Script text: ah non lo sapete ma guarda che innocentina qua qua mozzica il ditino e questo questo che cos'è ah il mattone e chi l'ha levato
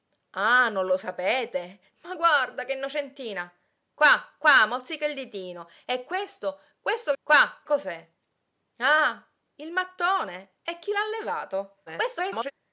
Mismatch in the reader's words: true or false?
true